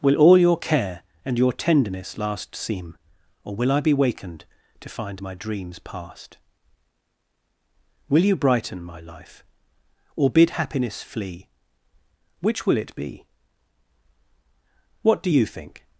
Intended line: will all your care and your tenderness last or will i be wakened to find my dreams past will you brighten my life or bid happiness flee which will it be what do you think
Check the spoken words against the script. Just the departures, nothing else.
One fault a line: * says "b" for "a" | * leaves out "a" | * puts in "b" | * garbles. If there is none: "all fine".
* puts in "seem"